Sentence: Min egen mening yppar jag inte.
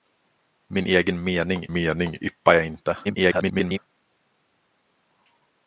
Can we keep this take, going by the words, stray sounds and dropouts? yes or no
no